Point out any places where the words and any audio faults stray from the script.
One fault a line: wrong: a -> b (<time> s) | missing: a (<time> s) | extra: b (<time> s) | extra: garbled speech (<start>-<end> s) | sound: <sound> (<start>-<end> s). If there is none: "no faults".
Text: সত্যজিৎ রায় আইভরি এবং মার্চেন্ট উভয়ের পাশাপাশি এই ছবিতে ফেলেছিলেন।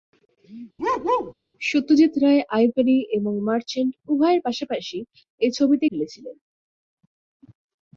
sound: bark (0.8-1.3 s)